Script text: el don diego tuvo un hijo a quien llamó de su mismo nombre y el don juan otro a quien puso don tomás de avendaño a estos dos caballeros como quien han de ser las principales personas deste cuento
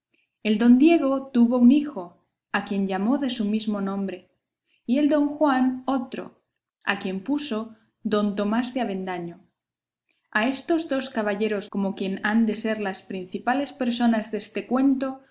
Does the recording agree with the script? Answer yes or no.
yes